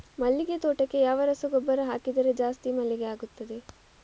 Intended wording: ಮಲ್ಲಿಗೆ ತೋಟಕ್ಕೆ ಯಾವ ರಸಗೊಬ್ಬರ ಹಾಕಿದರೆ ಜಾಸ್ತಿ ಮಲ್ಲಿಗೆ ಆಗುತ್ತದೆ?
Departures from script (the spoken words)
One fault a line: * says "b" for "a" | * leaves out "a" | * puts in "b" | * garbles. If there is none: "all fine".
all fine